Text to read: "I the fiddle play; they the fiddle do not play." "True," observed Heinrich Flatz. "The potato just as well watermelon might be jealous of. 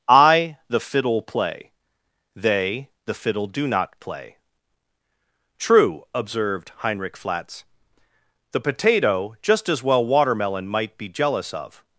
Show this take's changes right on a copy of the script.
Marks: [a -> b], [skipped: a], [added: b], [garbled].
"I the fiddle play; they the fiddle do not play." "True," observed Heinrich Flatz. "The potato just as well watermelon might be jealous of.